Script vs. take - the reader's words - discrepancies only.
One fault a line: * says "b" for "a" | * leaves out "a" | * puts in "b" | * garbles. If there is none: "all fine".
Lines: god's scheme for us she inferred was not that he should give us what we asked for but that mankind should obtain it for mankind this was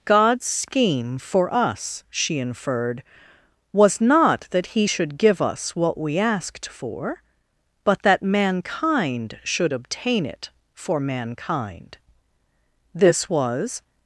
all fine